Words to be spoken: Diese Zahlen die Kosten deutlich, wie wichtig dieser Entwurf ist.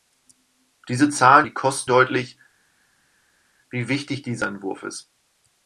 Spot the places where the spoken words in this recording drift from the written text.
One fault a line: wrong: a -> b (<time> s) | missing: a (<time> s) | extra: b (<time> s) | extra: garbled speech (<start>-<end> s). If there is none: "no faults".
no faults